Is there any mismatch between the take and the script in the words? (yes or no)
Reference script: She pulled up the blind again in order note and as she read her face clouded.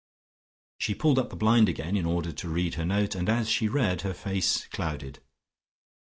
yes